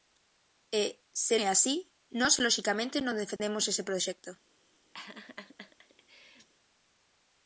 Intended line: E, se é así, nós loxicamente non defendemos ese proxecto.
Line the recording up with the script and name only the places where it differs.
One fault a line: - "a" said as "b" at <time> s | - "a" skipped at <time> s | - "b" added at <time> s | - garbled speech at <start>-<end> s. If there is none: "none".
none